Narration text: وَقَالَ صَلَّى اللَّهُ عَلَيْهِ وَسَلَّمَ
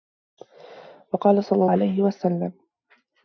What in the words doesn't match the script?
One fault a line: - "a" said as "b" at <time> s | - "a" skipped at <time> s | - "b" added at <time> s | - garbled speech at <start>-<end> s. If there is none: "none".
- "اللَّهُ" skipped at 1.6 s